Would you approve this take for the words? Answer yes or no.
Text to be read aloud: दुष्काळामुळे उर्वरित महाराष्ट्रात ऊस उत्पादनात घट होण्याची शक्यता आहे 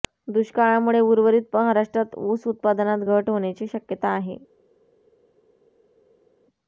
yes